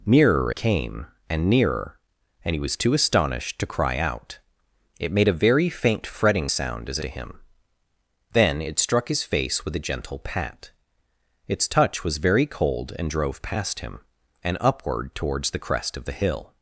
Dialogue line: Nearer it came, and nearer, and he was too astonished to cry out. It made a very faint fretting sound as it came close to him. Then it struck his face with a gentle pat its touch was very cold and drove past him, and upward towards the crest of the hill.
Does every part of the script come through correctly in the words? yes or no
no